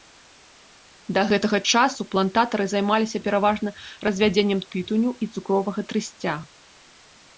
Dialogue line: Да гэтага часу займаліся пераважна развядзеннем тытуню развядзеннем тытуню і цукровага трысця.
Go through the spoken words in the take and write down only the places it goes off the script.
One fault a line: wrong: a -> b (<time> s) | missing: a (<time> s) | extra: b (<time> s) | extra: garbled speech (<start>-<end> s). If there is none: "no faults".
extra: плантатары (2.1 s)
missing: развядзеннем тытуню (5.1 s)